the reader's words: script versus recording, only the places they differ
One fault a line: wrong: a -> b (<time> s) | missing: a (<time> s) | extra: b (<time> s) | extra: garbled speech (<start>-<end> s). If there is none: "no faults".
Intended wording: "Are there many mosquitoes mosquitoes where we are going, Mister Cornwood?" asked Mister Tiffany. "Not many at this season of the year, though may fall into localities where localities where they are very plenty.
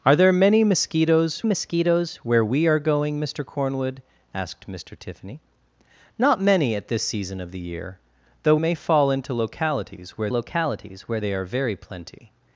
no faults